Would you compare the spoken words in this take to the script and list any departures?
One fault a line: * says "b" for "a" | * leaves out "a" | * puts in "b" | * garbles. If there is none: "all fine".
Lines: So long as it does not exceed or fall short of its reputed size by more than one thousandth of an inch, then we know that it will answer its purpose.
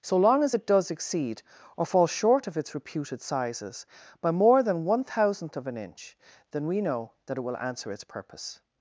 * leaves out "not"
* says "sizes" for "size"